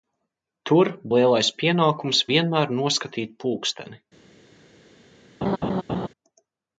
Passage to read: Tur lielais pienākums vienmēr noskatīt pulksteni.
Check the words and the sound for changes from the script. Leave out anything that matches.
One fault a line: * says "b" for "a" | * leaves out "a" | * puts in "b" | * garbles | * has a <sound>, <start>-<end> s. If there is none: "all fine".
* has a laugh, 5.4-6.1 s